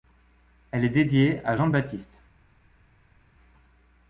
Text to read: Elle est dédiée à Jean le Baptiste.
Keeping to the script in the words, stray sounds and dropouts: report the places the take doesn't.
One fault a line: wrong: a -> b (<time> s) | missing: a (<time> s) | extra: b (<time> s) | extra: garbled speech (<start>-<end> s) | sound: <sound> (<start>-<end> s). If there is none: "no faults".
no faults